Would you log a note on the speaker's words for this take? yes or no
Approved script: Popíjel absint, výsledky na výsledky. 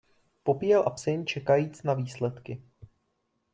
yes